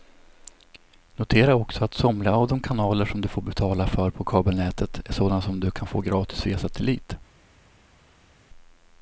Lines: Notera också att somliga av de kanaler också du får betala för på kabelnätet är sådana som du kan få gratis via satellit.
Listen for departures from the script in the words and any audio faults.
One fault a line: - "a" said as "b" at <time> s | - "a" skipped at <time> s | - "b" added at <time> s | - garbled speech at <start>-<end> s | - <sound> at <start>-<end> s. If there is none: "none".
- "också" said as "som" at 3.0 s